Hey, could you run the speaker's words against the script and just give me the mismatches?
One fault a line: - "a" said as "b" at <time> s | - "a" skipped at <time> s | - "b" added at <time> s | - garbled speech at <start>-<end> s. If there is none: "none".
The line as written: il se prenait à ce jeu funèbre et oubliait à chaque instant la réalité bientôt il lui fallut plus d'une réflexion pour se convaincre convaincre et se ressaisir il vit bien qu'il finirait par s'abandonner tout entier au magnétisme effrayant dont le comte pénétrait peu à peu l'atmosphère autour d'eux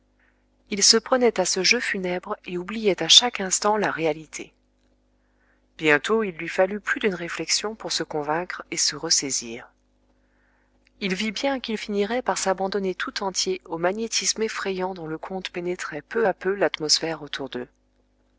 - "convaincre" skipped at 8.6 s